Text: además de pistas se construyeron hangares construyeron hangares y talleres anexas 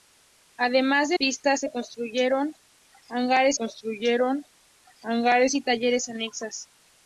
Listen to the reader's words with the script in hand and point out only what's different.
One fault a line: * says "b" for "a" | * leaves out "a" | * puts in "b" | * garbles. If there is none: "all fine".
all fine